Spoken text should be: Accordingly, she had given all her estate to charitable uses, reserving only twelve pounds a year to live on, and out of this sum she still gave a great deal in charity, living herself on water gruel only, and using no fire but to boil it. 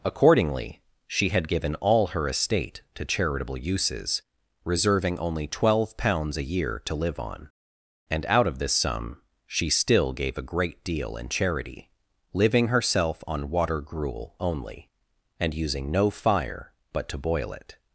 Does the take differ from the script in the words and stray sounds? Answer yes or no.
no